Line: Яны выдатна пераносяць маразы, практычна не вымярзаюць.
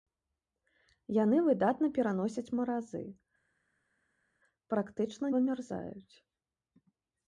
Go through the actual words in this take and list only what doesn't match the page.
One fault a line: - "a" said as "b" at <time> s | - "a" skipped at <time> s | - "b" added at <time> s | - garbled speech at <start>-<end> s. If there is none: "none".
- "не" skipped at 5.3 s